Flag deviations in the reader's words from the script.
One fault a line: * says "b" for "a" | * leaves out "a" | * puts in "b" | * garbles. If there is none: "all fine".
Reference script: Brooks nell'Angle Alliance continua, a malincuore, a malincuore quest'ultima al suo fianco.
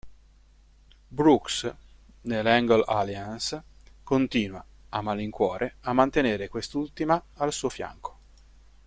* says "mantenere" for "malincuore"